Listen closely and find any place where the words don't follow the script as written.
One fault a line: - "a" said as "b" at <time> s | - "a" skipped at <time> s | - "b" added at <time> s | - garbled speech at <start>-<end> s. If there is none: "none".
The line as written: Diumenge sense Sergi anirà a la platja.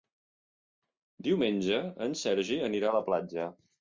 - "sense" said as "en" at 2.1 s